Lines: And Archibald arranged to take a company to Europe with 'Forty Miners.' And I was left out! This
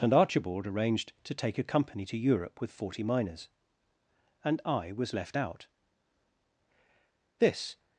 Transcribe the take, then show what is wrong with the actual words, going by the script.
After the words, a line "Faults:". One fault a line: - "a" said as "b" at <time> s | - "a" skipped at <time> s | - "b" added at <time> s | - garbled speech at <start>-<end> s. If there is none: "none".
And Archibald arranged to take a company to Europe with 'Forty Miners.' And I was left out! This
Faults:
none